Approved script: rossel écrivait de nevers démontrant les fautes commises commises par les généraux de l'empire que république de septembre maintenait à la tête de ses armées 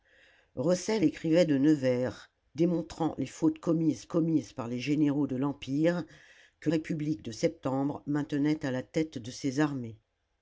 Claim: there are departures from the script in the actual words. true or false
false